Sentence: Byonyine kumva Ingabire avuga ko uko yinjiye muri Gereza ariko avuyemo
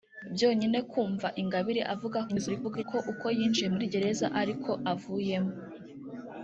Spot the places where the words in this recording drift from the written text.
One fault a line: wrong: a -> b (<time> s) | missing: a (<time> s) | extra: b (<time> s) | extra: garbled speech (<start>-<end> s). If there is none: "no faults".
extra: garbled speech (2.3-2.8 s)